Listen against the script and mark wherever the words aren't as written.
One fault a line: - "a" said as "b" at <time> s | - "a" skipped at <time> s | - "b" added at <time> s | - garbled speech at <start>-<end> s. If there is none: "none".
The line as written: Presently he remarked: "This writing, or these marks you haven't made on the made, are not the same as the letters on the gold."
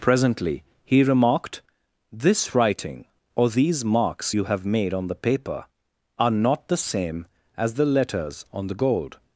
- "haven't" said as "have" at 4.4 s
- "made" said as "paper" at 5.1 s